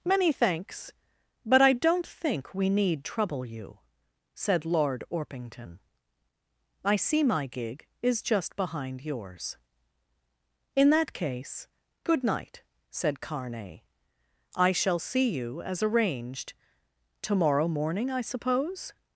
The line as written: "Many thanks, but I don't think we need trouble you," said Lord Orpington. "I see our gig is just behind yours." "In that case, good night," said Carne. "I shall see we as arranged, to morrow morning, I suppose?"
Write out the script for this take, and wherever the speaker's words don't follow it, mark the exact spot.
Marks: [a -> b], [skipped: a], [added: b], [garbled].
"Many thanks, but I don't think we need trouble you," said Lord Orpington. "I see [our -> my] gig is just behind yours." "In that case, good night," said Carne. "I shall see [we -> you] as arranged, to morrow morning, I suppose?"